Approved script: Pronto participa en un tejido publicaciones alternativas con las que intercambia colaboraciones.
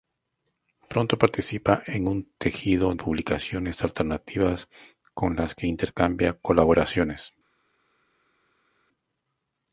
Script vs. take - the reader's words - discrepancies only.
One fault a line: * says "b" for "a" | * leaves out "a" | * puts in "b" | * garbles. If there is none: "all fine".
all fine